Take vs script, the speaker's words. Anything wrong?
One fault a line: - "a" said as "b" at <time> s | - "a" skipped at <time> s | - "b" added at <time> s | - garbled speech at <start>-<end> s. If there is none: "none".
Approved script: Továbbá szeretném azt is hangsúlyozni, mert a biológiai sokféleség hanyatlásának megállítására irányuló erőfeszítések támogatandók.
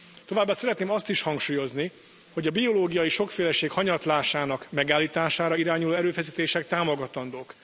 - "mert" said as "hogy" at 2.3 s